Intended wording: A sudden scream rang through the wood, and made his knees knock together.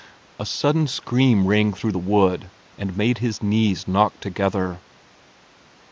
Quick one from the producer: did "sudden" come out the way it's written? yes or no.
yes